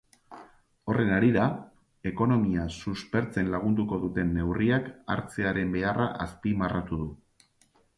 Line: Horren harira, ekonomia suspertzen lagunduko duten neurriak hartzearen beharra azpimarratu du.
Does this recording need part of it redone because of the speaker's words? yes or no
no